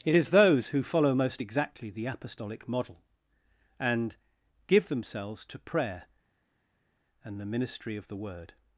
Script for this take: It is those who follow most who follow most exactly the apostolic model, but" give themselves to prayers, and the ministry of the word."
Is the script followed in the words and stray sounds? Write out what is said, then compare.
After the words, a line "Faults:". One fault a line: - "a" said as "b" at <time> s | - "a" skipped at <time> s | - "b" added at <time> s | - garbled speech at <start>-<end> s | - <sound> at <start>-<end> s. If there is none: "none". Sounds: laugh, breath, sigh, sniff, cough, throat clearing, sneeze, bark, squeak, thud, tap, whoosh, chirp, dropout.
It is those who follow most exactly the apostolic model, and" give themselves to prayer, and the ministry of the word."
Faults:
- "who follow most" skipped at 1.4 s
- "but" said as "and" at 3.8 s
- "prayers" said as "prayer" at 5.6 s